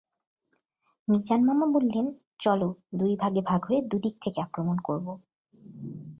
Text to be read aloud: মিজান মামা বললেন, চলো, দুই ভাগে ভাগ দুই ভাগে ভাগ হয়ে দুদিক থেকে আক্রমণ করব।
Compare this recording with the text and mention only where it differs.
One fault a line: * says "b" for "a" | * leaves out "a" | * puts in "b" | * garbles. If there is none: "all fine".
* leaves out "দুই ভাগে ভাগ"